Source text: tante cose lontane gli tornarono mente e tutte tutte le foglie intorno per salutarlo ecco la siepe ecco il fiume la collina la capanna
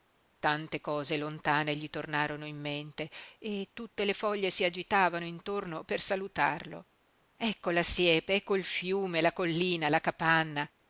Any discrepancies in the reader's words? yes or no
yes